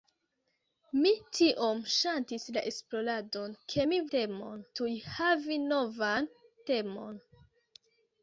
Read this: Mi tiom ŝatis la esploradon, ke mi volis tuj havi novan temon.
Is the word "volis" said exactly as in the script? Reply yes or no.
no